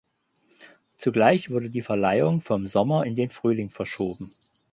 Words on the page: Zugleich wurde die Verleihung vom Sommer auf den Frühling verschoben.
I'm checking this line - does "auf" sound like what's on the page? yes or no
no